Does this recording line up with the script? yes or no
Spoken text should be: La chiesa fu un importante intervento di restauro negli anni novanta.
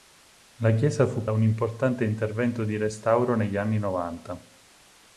yes